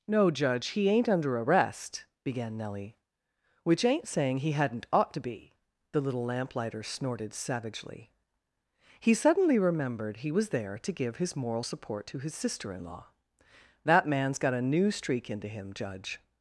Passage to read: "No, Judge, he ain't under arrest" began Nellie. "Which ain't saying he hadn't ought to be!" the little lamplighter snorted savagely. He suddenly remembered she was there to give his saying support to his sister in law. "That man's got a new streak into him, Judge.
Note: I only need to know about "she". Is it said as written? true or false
false